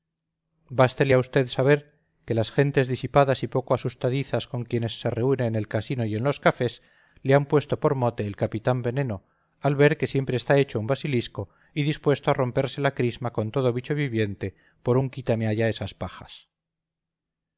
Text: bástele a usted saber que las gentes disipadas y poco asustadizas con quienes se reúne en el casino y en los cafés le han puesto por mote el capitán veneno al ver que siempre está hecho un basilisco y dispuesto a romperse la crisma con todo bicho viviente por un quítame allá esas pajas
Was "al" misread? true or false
false